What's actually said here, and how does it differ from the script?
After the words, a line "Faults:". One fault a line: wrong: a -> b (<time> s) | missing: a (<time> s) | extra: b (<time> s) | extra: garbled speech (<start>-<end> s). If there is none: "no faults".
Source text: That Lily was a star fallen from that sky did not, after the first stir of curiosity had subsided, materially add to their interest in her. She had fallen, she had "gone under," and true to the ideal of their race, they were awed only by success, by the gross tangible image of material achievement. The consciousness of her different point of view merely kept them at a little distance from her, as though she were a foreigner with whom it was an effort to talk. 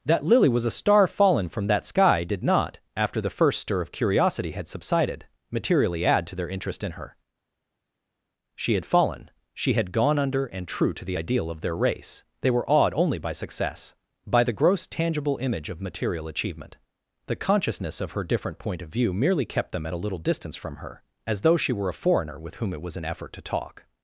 That Lily was a star fallen from that sky did not, after the first stir of curiosity had subsided, materially add to their interest in her. She had fallen, she had "gone under," and true to the ideal of their race, they were awed only by success, by the gross tangible image of material achievement. The consciousness of her different point of view merely kept them at a little distance from her, as though she were a foreigner with whom it was an effort to talk.
Faults:
no faults